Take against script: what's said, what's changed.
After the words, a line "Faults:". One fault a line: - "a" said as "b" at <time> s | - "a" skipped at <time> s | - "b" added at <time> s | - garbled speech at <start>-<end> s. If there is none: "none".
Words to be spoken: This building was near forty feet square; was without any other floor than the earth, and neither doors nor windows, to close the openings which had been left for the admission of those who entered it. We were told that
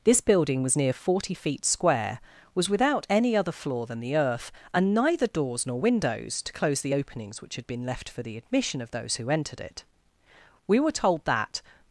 This building was near forty feet square; was without any other floor than the earth, and neither doors nor windows, to close the openings which had been left for the admission of those who entered it. We were told that
Faults:
none